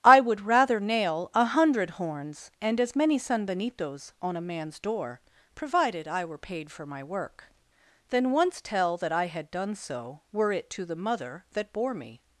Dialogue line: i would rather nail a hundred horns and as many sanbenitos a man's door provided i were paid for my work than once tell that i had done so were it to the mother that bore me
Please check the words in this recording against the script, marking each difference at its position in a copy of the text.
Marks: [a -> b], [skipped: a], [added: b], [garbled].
i would rather nail a hundred horns and as many sanbenitos [added: on] a man's door provided i were paid for my work than once tell that i had done so were it to the mother that bore me